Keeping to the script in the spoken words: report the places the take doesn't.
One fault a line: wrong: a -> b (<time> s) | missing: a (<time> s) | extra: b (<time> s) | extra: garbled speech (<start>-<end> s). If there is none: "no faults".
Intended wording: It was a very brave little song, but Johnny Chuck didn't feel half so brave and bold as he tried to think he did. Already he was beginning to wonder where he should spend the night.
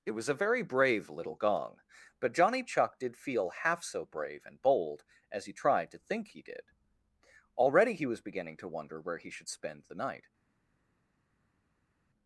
wrong: song -> gong (1.3 s)
wrong: didn't -> did (3.0 s)